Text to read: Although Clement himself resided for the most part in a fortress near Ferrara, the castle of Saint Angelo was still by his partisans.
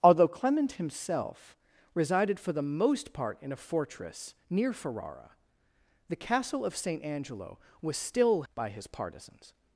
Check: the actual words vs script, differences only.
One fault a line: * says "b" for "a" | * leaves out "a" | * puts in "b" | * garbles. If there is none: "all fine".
all fine